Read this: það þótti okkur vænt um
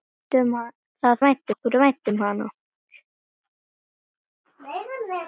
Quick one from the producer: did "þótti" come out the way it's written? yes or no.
no